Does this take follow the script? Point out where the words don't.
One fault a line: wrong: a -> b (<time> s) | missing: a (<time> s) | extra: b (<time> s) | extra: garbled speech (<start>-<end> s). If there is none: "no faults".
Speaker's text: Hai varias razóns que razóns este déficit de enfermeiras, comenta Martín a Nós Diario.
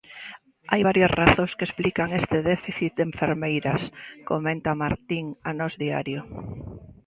wrong: razóns -> explican (1.7 s)